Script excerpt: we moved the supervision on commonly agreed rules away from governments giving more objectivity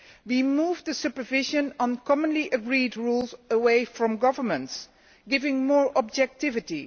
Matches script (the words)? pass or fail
pass